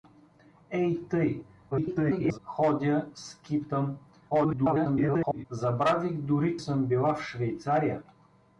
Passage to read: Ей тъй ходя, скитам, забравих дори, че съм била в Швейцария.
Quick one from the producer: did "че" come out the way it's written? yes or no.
no